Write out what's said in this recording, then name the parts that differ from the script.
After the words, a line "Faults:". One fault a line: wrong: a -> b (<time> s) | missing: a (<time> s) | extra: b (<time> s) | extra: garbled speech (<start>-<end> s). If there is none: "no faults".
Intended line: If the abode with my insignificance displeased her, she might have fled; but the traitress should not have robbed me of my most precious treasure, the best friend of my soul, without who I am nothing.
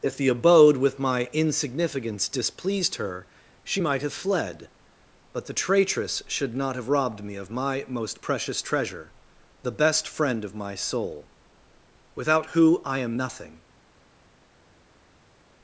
If the abode with my insignificance displeased her, she might have fled; but the traitress should not have robbed me of my most precious treasure, the best friend of my soul, without who I am nothing.
Faults:
no faults